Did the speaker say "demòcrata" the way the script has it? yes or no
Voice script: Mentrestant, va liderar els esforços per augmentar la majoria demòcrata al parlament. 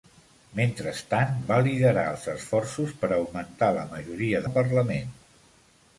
no